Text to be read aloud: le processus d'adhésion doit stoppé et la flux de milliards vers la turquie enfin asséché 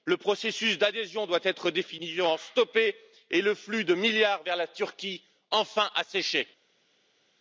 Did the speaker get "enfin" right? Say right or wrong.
right